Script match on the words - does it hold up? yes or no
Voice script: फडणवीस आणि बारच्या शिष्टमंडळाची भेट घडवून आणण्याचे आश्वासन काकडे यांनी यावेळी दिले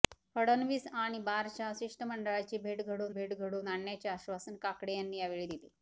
no